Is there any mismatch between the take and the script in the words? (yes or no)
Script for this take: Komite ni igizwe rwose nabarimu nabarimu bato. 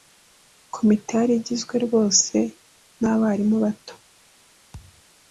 yes